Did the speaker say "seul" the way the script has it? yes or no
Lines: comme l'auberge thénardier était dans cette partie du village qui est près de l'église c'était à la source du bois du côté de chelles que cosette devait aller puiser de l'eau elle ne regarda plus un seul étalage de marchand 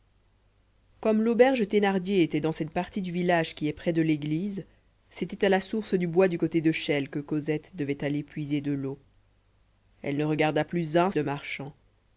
no